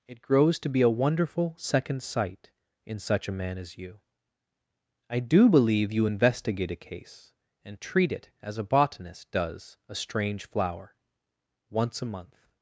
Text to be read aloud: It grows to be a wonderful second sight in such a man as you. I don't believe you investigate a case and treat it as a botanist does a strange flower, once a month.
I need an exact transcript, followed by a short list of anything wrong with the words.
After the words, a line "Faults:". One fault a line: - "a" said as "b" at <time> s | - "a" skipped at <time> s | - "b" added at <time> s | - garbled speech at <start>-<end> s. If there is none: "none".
It grows to be a wonderful second sight in such a man as you. I do believe you investigate a case and treat it as a botanist does a strange flower, once a month.
Faults:
- "don't" said as "do" at 5.2 s